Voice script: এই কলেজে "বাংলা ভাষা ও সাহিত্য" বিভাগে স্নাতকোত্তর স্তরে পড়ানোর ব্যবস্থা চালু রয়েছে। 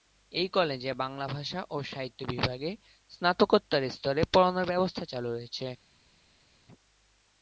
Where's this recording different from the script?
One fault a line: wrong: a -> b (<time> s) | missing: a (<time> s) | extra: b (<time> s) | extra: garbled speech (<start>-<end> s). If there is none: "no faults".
no faults